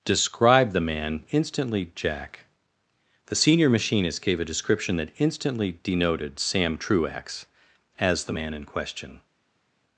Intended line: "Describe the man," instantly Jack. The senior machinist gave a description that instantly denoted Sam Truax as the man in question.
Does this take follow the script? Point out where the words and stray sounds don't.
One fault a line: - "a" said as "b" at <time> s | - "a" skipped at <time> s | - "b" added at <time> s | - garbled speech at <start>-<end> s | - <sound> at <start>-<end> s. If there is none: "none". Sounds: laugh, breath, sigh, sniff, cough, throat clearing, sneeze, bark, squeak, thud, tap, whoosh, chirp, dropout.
none